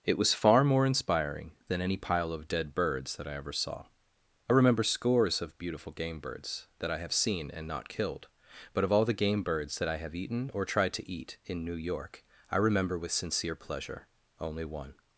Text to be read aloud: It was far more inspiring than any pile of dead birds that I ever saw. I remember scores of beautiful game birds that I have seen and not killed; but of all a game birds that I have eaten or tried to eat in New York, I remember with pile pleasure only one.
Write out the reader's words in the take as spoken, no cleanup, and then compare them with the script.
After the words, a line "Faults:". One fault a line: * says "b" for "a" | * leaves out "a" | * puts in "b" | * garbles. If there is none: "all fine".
It was far more inspiring than any pile of dead birds that I ever saw. I remember scores of beautiful game birds that I have seen and not killed; but of all the game birds that I have eaten or tried to eat in New York, I remember with sincere pleasure only one.
Faults:
* says "the" for "a"
* says "sincere" for "pile"